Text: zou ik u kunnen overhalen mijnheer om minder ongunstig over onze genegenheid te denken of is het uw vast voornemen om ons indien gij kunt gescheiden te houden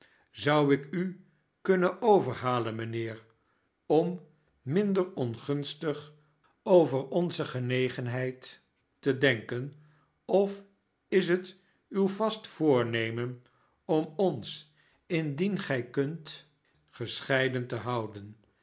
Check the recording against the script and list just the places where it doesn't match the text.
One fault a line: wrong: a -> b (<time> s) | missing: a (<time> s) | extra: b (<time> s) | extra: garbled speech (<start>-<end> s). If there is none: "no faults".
no faults